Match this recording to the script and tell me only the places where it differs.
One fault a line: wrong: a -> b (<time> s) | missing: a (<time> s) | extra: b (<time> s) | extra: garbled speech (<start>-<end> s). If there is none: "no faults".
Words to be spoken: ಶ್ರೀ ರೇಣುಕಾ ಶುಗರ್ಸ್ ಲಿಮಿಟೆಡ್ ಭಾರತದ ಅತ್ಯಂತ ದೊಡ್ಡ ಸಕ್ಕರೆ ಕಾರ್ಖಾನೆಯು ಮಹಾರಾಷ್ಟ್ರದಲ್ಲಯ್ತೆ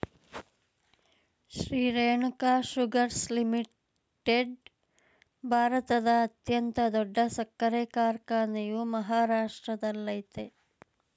no faults